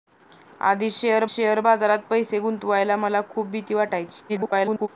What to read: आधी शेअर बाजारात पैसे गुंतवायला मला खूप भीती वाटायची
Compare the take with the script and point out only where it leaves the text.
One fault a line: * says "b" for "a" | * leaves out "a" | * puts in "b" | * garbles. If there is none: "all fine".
* puts in "शेअर"
* garbles